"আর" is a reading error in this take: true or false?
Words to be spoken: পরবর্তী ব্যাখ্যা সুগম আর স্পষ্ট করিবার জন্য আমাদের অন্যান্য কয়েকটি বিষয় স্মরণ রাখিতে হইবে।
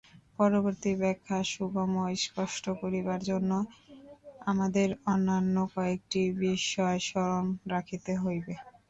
true